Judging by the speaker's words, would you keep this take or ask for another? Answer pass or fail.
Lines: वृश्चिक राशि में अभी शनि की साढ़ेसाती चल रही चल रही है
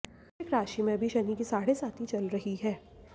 fail